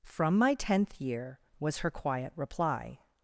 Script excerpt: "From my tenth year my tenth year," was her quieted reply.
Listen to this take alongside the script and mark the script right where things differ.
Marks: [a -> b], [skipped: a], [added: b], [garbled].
"From my tenth year [skipped: my tenth year,"] was her [quieted -> quiet] reply.